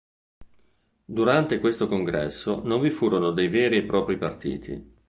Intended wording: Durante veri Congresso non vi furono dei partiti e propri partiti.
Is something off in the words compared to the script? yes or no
yes